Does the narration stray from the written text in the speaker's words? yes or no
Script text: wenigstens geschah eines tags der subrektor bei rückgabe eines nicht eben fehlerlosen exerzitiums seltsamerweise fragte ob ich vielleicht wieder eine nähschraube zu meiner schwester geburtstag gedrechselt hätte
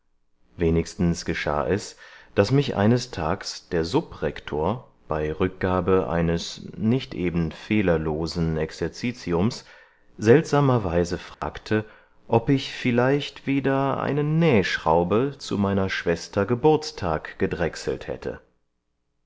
yes